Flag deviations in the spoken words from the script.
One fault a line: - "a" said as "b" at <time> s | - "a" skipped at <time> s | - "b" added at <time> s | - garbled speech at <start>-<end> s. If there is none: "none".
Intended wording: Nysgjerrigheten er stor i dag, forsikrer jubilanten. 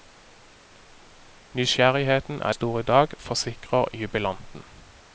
none